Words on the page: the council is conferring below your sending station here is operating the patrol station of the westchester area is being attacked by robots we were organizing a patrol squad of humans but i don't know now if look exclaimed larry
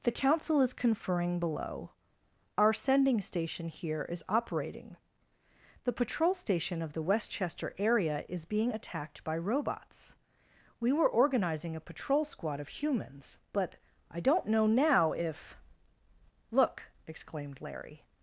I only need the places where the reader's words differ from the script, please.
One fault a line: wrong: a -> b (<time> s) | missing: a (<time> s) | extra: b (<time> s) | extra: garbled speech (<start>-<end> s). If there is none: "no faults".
wrong: your -> our (2.6 s)